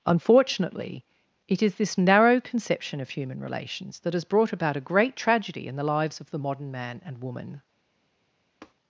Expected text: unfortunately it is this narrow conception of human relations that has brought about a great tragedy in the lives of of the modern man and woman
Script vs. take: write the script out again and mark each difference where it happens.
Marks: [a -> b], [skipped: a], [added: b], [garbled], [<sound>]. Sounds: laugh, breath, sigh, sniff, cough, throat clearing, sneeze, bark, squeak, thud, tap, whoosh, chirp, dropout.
unfortunately it is this narrow conception of human relations that has brought about a great tragedy in the lives of [skipped: of] the modern man and woman [tap]